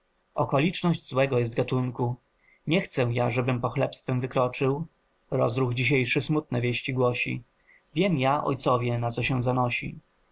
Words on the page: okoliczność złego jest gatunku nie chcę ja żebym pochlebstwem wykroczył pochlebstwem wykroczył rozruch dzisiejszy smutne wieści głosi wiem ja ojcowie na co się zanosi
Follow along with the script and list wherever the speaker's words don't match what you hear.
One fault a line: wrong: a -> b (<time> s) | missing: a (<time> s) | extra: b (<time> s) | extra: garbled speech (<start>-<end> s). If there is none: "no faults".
missing: pochlebstwem wykroczył (4.8 s)